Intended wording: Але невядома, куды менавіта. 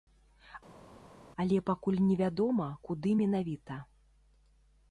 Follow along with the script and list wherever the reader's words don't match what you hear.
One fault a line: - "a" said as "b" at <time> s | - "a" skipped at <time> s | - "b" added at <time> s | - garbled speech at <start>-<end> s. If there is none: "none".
- "пакуль" added at 1.7 s